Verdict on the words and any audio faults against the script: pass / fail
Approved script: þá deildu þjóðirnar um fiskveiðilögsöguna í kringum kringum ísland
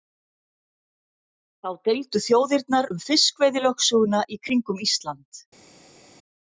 fail